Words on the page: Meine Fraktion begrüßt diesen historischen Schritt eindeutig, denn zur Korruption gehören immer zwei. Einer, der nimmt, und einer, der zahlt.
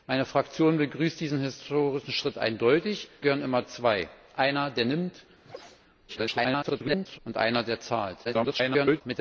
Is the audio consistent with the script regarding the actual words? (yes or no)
no